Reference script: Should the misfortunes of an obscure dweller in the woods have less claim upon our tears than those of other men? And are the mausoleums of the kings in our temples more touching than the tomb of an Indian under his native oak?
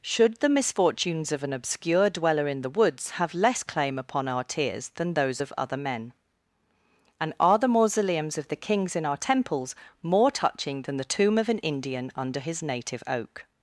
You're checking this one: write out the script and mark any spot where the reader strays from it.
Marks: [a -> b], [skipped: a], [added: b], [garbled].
Should the misfortunes of an obscure dweller in the woods have less claim upon our tears than those of other men? And are the mausoleums of the kings in our temples more touching than the tomb of an Indian under his native oak?